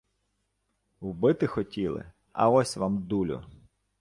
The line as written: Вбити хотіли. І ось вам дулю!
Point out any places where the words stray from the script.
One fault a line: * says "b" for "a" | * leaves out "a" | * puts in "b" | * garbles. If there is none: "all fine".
* says "А" for "І"